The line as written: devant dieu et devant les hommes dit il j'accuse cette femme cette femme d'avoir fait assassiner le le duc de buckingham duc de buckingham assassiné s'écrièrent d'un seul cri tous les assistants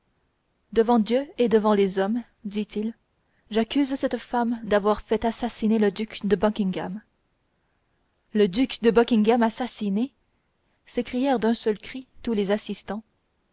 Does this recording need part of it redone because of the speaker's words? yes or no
yes